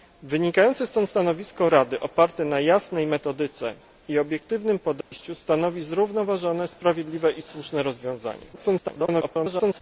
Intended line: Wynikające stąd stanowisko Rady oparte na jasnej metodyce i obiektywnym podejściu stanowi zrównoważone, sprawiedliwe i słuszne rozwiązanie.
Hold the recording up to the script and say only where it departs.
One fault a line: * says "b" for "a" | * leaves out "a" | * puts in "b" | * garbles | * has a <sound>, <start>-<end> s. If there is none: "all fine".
* has a dropout, 5.0-5.1 s
* garbles